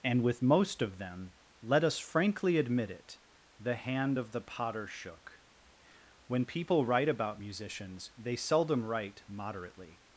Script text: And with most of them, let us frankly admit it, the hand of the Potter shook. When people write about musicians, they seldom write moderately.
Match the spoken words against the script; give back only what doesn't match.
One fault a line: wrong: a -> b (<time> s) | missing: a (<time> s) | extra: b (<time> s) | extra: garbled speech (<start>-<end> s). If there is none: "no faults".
no faults